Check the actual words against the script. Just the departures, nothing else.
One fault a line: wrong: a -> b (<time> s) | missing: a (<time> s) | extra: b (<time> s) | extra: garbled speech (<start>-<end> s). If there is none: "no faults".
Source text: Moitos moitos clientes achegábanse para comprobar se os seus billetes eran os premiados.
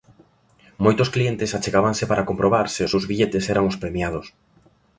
missing: moitos (1.1 s)